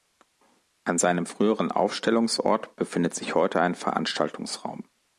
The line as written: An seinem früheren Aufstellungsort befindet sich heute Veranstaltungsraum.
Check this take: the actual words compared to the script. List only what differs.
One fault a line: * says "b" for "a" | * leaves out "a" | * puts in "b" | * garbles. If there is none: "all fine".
* puts in "ein"